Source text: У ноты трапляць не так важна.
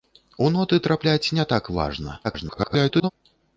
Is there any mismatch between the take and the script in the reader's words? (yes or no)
yes